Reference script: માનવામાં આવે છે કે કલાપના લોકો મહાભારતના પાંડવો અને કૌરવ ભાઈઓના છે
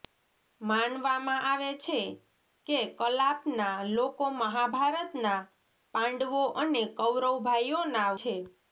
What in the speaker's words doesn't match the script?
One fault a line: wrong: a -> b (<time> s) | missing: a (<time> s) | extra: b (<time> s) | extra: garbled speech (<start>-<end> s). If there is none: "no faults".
no faults